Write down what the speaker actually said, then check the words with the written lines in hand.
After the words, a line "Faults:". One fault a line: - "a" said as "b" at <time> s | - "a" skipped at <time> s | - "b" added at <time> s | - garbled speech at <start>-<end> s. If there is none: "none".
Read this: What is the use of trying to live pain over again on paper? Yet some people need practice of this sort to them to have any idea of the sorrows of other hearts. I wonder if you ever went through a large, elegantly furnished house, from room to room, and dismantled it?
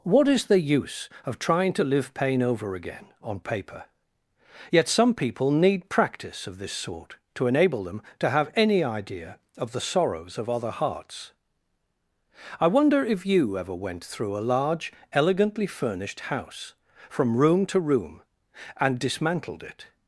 What is the use of trying to live pain over again on paper? Yet some people need practice of this sort to enable them to have any idea of the sorrows of other hearts. I wonder if you ever went through a large, elegantly furnished house, from room to room, and dismantled it?
Faults:
- "enable" added at 7.5 s